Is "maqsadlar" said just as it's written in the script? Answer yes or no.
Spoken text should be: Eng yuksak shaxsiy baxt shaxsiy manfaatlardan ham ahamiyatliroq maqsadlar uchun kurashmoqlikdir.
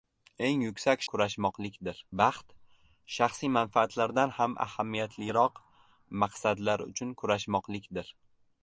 yes